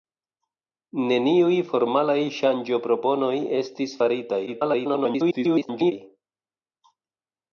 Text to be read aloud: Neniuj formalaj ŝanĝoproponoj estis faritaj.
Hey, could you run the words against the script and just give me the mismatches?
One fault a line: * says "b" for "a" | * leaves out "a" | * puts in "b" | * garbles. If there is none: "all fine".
* garbles